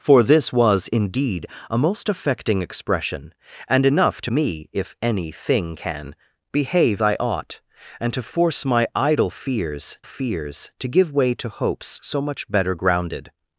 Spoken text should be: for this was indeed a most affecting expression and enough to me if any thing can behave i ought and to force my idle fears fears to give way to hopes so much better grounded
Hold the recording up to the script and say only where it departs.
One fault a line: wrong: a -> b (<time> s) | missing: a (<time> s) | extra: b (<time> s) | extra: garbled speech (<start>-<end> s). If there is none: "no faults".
no faults